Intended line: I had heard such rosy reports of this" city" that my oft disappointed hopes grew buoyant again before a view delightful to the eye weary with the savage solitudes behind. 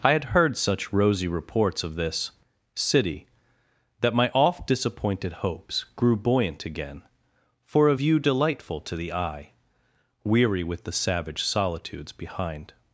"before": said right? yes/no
no